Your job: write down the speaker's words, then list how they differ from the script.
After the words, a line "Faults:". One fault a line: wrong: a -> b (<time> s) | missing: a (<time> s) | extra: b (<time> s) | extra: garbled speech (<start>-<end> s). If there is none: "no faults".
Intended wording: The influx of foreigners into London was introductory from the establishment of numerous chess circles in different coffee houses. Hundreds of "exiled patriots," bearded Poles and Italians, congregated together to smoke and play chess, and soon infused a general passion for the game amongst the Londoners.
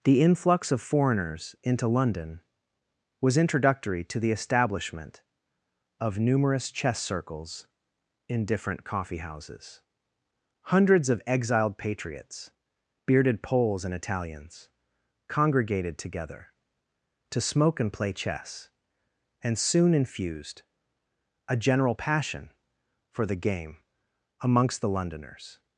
The influx of foreigners into London was introductory to the establishment of numerous chess circles in different coffee houses. Hundreds of "exiled patriots," bearded Poles and Italians, congregated together to smoke and play chess, and soon infused a general passion for the game amongst the Londoners.
Faults:
wrong: from -> to (4.0 s)